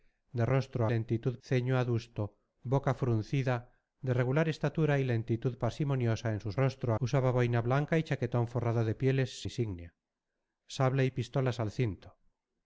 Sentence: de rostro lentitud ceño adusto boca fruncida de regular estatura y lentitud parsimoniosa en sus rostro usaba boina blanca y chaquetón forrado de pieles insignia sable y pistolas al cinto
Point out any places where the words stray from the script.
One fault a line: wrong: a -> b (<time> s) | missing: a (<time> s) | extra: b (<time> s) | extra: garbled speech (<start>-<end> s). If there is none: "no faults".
no faults